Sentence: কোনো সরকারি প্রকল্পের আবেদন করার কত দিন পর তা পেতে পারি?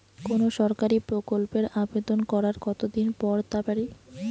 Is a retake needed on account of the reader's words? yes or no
yes